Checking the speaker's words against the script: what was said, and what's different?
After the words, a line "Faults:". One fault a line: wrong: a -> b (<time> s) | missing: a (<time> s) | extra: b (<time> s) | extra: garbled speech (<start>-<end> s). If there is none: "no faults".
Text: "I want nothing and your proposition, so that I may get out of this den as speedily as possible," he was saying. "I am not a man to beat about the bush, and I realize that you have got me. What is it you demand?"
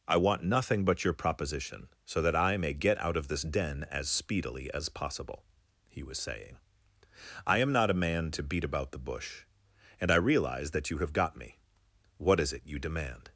"I want nothing but your proposition, so that I may get out of this den as speedily as possible," he was saying. "I am not a man to beat about the bush, and I realize that you have got me. What is it you demand?"
Faults:
wrong: and -> but (0.8 s)